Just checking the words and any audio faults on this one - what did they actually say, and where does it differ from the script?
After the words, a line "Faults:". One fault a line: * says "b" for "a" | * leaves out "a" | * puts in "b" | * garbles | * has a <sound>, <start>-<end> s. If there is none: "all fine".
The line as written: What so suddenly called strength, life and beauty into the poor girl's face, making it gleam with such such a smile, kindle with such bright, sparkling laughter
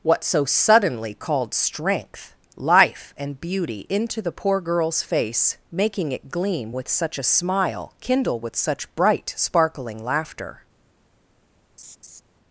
What so suddenly called strength, life and beauty into the poor girl's face, making it gleam with such a smile, kindle with such bright, sparkling laughter
Faults:
* leaves out "such"
* has a laugh, 11.8-12.2 s